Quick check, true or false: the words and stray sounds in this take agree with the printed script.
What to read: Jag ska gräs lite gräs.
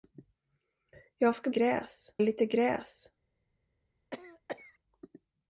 false